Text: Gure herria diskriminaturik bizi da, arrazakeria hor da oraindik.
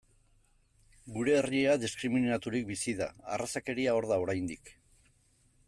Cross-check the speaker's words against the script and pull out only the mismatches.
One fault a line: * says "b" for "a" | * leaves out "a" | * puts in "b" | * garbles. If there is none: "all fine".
all fine